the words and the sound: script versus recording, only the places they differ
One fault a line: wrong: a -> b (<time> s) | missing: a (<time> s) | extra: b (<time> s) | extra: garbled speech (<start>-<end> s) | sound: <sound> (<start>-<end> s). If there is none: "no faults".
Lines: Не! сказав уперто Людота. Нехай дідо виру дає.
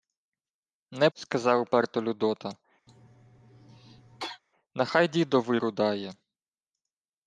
sound: cough (2.9-4.4 s)